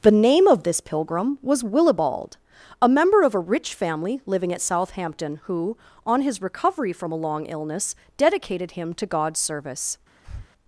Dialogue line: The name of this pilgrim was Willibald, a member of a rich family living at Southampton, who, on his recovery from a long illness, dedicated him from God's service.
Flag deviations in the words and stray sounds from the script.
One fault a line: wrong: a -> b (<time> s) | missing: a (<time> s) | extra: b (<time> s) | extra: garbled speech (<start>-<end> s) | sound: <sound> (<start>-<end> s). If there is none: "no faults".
wrong: from -> to (8.9 s)
sound: breath (10.2-10.5 s)